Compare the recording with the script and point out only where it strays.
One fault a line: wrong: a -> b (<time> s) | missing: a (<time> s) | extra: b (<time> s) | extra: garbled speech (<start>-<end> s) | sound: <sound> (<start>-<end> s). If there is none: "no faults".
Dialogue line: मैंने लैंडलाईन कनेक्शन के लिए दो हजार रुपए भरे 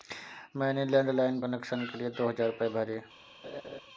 sound: laugh (3.4-3.8 s)